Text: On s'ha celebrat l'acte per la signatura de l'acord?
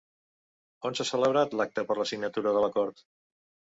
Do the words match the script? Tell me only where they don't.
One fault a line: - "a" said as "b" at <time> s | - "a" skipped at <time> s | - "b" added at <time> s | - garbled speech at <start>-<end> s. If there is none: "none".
none